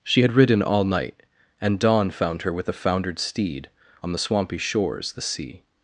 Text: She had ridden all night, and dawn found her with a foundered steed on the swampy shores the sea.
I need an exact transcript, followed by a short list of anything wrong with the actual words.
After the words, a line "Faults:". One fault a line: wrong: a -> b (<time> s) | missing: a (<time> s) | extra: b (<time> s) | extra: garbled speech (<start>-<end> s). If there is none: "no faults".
She had ridden all night, and dawn found her with a foundered steed on the swampy shores the sea.
Faults:
no faults